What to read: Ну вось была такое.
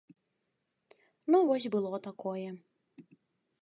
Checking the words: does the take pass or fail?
fail